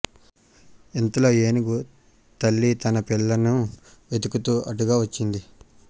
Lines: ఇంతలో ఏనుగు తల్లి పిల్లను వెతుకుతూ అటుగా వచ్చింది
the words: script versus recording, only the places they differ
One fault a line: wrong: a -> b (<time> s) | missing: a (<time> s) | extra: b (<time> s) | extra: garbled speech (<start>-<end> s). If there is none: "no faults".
extra: తన (2.8 s)